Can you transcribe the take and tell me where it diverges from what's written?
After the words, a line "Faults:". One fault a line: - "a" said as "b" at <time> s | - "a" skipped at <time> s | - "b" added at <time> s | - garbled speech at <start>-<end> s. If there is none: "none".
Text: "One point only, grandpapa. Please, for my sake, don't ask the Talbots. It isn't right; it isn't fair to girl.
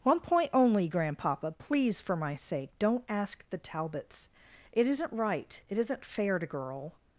"One point only, grandpapa. Please, for my sake, don't ask the Talbots. It isn't right; it isn't fair to girl.
Faults:
none